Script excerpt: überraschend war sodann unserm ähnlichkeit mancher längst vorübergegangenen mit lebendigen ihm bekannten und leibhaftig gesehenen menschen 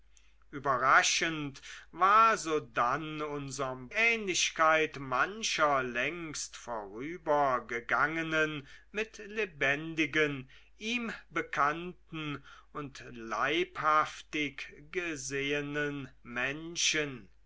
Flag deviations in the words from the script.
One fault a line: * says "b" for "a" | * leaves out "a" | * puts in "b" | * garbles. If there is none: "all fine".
all fine